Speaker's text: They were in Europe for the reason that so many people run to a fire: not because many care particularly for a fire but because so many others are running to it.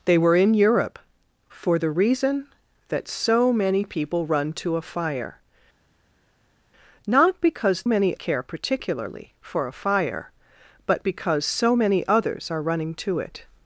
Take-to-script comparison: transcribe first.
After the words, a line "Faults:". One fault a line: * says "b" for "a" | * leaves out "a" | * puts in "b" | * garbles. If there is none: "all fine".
They were in Europe for the reason that so many people run to a fire: not because many care particularly for a fire but because so many others are running to it.
Faults:
all fine